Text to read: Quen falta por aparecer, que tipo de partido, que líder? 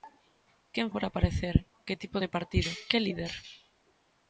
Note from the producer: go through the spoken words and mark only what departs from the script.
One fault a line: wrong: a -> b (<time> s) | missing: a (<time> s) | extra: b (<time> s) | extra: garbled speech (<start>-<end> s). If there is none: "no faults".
missing: falta (0.9 s)